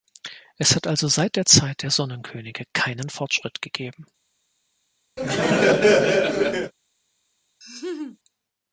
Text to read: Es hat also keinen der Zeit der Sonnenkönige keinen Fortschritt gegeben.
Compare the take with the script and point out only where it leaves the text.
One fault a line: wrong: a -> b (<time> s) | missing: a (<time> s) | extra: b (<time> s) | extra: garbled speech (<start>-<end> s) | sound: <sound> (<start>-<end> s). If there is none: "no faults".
wrong: keinen -> seit (1.1 s)
sound: laugh (5.2-6.7 s)
sound: laugh (7.6-8.2 s)